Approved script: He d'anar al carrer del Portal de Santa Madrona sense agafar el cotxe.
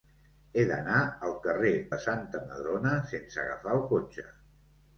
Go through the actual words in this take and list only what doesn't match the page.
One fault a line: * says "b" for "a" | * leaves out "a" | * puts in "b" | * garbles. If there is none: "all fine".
* leaves out "del Portal"